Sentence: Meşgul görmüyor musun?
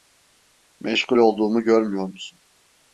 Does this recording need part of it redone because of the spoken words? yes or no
yes